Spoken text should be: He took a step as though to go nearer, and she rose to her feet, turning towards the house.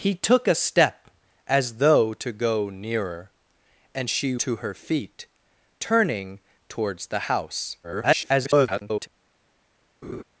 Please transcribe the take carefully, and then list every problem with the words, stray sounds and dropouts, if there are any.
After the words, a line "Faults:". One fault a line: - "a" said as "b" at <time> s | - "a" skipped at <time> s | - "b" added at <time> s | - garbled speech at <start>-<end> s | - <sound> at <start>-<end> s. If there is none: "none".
He took a step as though to go nearer, and she to her feet, turning towards the house. [garbled]
Faults:
- "rose" skipped at 4.3 s
- garbled speech at 7.8-9.1 s
- laugh at 10.0-10.2 s